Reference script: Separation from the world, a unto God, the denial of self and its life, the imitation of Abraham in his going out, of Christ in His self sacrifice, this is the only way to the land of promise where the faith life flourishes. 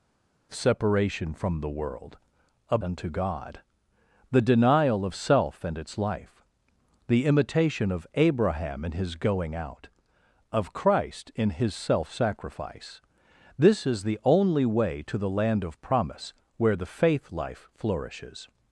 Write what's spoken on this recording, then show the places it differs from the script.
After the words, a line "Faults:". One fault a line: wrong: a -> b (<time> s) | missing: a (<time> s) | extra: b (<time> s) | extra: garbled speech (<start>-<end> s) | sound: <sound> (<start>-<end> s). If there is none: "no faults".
Separation from the world, a unto God, the denial of self and its life, the imitation of Abraham in his going out, of Christ in His self sacrifice, this is the only way to the land of promise where the faith life flourishes.
Faults:
no faults